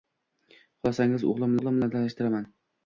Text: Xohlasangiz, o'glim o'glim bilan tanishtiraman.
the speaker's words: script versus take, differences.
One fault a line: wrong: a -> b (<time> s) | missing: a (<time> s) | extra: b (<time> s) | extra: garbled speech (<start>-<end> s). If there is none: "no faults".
no faults